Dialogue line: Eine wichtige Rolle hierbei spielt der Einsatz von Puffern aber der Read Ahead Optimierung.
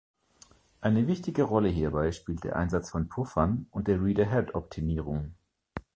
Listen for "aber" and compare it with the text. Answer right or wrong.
wrong